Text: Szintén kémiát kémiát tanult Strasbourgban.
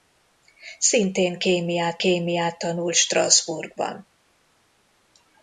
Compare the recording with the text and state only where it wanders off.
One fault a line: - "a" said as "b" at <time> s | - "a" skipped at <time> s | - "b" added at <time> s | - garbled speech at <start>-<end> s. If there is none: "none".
none